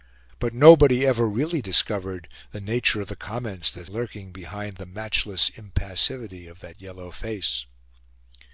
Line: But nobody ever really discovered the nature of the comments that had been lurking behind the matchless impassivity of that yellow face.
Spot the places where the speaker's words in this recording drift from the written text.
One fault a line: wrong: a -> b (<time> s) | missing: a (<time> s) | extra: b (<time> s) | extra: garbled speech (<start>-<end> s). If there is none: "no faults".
missing: had been (3.9 s)